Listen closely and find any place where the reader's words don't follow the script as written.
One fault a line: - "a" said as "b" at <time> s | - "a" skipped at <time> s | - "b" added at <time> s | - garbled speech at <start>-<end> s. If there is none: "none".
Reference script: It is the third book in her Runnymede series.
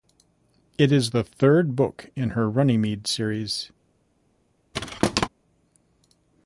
none